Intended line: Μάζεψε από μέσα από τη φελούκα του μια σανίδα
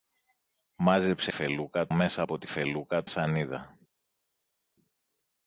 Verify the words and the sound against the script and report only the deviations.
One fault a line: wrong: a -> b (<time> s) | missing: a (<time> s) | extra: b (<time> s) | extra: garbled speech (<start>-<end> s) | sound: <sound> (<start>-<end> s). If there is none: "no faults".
wrong: από -> φελούκα (1.3 s)
missing: του μια (3.0 s)